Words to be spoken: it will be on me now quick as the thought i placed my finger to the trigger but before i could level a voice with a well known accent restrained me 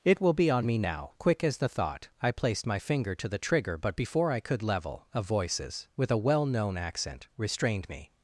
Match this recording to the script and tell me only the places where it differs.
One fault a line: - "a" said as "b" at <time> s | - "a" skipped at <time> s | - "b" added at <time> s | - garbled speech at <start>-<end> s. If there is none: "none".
- "voice" said as "voices" at 5.2 s